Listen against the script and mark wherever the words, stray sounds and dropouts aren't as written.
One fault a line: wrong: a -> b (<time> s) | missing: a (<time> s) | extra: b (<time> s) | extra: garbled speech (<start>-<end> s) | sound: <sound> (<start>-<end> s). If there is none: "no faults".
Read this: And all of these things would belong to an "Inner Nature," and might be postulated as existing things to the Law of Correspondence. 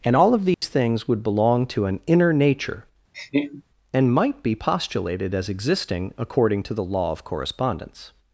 sound: dropout (0.5-0.6 s)
sound: laugh (3.1-3.6 s)
wrong: things -> according (6.2 s)